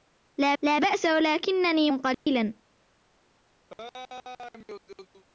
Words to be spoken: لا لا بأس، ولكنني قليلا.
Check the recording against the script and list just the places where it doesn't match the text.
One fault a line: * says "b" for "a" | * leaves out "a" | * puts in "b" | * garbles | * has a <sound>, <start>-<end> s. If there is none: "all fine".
* has a dropout, 2.1-2.3 s
* has a laugh, 3.7-5.2 s